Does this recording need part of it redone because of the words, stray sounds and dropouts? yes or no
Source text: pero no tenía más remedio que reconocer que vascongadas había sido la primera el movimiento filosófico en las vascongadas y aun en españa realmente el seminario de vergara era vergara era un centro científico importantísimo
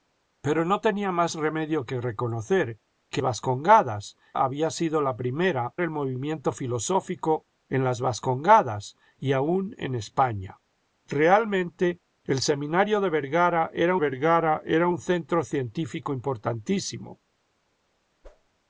yes